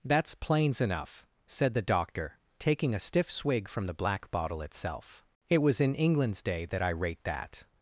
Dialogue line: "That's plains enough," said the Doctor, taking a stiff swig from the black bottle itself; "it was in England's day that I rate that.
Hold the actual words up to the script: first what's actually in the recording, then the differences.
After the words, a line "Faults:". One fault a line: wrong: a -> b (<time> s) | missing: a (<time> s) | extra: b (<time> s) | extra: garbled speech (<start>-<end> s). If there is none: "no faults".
"That's plains enough," said the Doctor, taking a stiff swig from the black bottle itself; "it was in England's day that I rate that.
Faults:
no faults